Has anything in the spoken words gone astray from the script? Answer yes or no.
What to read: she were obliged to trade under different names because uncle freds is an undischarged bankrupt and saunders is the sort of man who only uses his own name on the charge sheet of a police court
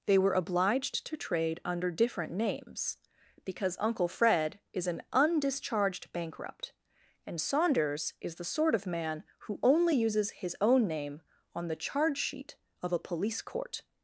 yes